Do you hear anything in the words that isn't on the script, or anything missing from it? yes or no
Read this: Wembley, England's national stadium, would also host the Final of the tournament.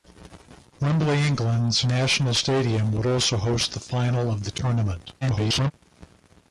yes